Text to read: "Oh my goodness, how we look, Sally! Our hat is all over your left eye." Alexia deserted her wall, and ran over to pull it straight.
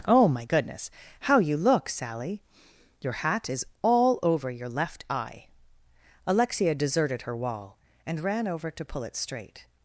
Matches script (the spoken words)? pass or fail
fail